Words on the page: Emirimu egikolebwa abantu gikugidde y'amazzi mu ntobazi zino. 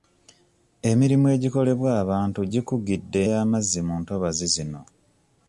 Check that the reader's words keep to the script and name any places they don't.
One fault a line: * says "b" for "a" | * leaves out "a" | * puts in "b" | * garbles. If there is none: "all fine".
all fine